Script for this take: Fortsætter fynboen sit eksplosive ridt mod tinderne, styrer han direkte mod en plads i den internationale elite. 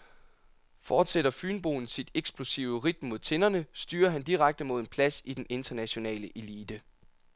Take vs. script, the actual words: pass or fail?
pass